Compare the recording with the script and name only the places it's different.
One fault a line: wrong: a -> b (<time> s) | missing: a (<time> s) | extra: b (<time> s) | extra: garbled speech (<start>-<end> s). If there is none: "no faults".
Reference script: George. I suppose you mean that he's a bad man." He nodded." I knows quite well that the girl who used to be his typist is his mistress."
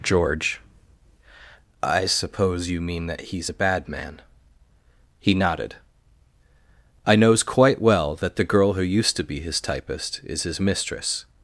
no faults